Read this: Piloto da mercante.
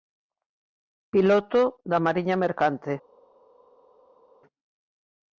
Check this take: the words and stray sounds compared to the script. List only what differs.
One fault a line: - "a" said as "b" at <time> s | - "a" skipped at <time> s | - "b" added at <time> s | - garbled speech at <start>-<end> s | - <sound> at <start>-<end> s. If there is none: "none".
- "mariña" added at 2.1 s